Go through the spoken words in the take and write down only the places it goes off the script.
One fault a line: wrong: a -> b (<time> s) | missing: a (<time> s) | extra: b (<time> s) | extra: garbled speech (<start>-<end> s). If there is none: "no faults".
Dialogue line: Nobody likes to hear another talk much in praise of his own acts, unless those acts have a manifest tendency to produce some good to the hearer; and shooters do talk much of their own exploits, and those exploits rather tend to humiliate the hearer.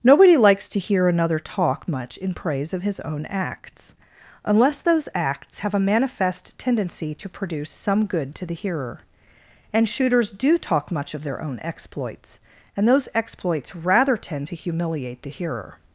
no faults